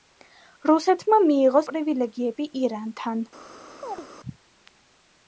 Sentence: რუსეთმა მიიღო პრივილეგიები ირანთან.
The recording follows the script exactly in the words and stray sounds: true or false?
false